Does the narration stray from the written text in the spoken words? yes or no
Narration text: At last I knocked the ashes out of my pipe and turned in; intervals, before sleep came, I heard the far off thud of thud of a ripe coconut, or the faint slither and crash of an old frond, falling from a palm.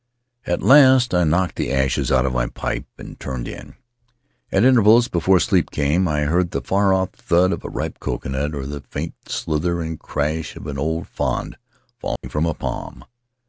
yes